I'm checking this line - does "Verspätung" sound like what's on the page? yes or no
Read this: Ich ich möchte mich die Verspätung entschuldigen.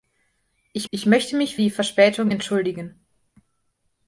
yes